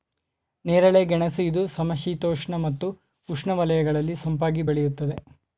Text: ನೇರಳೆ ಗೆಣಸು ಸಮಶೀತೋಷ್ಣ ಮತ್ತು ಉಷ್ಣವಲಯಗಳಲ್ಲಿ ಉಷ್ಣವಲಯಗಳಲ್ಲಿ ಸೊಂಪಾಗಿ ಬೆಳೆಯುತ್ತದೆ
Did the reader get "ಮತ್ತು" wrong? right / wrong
right